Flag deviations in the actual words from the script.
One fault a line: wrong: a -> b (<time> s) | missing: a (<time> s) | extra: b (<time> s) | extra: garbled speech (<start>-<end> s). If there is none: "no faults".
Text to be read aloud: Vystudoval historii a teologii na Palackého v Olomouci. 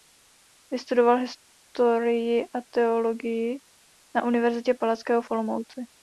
extra: Univerzitě (4.2 s)